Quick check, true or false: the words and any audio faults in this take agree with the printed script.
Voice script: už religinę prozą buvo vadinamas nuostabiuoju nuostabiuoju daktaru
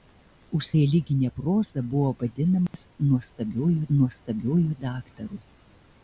false